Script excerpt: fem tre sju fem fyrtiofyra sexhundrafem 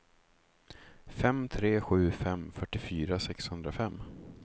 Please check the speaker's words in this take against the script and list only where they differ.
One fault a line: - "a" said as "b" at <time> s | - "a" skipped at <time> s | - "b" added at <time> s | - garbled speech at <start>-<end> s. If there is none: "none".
none